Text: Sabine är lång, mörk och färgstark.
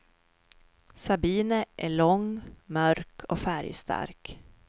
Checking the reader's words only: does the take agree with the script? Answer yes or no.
yes